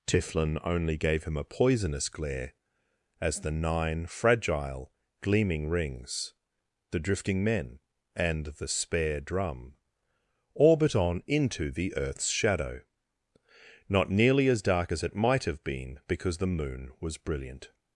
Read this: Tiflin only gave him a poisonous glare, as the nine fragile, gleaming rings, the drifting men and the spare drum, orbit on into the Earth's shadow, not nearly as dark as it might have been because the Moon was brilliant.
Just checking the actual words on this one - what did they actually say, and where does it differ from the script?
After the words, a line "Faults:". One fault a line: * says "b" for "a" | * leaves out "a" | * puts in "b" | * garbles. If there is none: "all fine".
Tiflin only gave him a poisonous glare, as the nine fragile, gleaming rings, the drifting men and the spare drum, orbit on into the Earth's shadow, not nearly as dark as it might have been because the Moon was brilliant.
Faults:
all fine